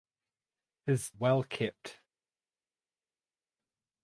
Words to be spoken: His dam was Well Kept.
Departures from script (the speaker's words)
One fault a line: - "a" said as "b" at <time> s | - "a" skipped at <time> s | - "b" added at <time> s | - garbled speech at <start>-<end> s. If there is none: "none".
- "dam was" skipped at 1.1 s